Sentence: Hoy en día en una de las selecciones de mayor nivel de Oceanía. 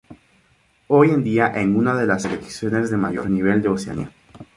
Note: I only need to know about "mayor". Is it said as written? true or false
true